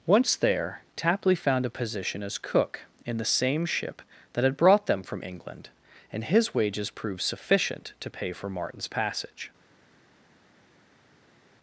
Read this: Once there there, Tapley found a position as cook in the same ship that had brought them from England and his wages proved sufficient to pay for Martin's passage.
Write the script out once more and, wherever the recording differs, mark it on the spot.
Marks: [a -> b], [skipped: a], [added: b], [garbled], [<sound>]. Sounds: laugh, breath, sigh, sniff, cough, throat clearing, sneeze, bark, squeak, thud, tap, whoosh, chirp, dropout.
Once there [skipped: there,] Tapley found a position as cook in the same ship that had brought them from England and his wages proved sufficient to pay for Martin's passage.